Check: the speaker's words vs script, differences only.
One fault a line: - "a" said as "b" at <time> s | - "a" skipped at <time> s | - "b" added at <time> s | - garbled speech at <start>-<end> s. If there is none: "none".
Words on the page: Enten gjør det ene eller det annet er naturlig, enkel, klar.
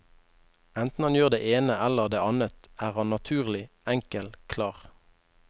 - "han" added at 1.1 s
- "han" added at 3.0 s